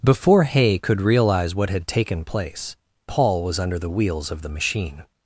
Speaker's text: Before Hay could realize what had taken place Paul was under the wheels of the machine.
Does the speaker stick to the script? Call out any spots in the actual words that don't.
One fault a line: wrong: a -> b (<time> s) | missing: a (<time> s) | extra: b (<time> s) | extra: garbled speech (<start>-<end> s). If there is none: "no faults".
no faults